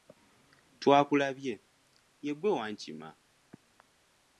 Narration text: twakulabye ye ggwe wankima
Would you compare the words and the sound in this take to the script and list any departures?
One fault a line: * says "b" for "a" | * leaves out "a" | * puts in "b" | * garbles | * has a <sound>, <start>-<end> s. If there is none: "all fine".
all fine